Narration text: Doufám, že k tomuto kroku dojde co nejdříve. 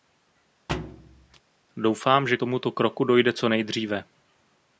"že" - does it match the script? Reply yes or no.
yes